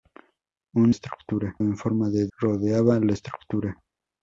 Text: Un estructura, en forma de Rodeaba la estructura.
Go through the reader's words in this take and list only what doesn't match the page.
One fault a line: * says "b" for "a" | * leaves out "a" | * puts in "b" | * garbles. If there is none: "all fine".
all fine